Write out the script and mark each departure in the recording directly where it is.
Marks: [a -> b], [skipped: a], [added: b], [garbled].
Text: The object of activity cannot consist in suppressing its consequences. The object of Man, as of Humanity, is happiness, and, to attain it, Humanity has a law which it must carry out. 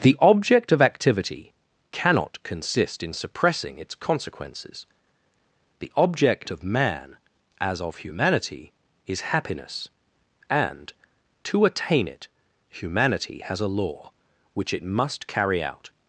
The object of activity cannot consist in suppressing its consequences. The object of Man, as of Humanity, is happiness, and, to attain it, Humanity has a law which it must carry out.